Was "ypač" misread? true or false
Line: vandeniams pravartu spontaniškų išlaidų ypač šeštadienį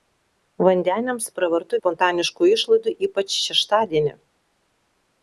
false